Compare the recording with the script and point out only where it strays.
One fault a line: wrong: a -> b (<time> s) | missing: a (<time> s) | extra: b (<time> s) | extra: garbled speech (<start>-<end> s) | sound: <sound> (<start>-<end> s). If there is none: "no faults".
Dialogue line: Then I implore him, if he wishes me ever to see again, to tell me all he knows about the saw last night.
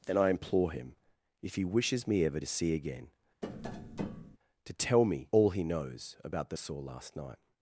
sound: tap (3.4-4.4 s)